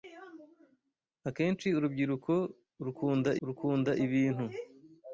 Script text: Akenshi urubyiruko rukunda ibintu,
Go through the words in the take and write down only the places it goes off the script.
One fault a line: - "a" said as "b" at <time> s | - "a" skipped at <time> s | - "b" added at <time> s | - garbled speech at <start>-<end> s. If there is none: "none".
- "rukunda" added at 3.5 s